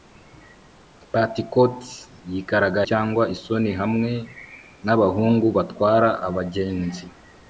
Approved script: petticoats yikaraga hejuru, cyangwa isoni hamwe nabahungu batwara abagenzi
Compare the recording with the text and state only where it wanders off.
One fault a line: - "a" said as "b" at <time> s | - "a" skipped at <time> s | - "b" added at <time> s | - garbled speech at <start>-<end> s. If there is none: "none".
- "hejuru" skipped at 2.8 s